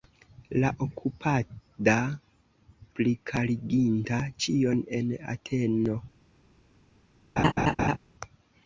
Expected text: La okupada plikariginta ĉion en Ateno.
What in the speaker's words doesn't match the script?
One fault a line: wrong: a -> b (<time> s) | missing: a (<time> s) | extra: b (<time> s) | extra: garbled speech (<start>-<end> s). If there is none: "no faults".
no faults